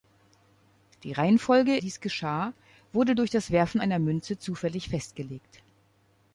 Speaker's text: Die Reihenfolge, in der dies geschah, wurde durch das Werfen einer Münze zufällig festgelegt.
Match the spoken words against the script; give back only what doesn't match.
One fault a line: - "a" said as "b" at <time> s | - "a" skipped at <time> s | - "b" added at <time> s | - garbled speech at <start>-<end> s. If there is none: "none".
- "in der" skipped at 1.8 s